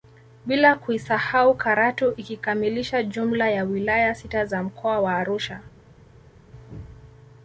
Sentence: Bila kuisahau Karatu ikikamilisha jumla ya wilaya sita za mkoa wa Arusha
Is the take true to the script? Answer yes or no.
yes